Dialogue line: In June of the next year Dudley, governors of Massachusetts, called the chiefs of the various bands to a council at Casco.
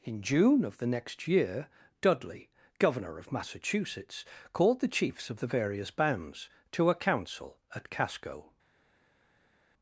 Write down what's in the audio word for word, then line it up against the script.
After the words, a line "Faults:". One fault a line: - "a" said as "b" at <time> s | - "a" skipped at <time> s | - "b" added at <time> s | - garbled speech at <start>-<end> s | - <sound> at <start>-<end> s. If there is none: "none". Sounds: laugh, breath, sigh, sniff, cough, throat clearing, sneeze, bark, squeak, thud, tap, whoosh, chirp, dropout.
In June of the next year Dudley, governor of Massachusetts, called the chiefs of the various bands to a council at Casco.
Faults:
- "governors" said as "governor" at 2.8 s